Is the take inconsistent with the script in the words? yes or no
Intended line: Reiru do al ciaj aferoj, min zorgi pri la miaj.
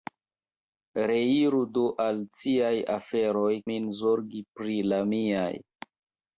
no